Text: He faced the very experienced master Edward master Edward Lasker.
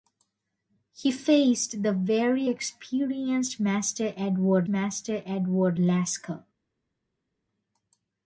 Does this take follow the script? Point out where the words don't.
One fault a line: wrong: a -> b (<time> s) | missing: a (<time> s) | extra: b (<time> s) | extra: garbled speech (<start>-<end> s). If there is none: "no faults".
no faults